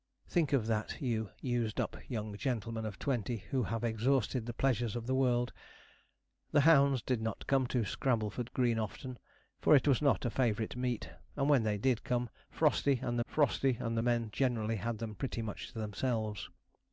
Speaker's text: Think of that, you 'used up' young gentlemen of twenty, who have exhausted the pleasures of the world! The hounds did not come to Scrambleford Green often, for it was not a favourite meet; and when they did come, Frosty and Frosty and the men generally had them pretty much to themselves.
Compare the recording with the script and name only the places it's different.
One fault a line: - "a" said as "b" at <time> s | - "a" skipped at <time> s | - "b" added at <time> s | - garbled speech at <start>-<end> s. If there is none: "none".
none